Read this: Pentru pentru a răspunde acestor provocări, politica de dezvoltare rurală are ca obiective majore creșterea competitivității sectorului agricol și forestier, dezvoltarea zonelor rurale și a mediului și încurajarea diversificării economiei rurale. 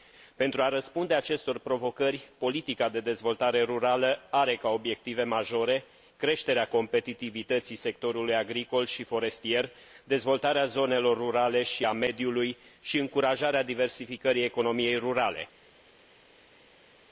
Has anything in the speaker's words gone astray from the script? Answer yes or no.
yes